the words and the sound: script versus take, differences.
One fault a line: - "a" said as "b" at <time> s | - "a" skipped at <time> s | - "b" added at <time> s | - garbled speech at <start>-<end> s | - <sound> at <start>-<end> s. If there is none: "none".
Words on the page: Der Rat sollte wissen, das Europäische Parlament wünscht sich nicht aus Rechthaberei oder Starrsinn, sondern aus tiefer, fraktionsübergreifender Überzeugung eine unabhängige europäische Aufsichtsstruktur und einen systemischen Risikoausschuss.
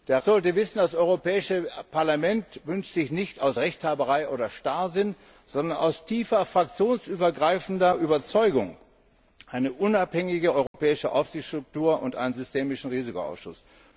- "Rat" skipped at 0.2 s
- dropout at 10.7-10.7 s